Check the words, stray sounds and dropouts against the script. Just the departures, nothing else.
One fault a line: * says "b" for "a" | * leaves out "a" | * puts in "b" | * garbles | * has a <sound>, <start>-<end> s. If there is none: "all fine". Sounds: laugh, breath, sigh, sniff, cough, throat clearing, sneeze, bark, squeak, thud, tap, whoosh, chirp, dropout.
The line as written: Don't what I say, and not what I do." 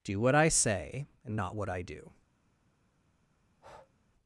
* says "Do" for "Don't"
* has a breath, 3.5-3.9 s